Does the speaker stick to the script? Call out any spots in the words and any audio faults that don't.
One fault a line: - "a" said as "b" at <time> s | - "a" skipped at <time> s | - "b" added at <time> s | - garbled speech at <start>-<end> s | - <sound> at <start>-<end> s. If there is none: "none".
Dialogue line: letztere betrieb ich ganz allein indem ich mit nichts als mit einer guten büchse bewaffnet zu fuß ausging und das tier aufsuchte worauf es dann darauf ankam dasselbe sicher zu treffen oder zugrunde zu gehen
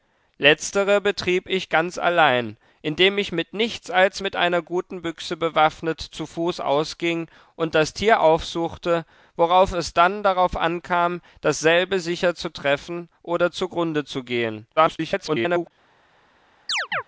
- garbled speech at 14.8-15.7 s
- chirp at 16.7-17.0 s